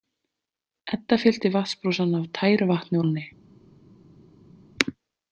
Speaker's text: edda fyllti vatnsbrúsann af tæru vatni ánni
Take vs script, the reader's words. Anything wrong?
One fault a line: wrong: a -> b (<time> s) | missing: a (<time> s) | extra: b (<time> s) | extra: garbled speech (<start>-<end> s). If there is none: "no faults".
no faults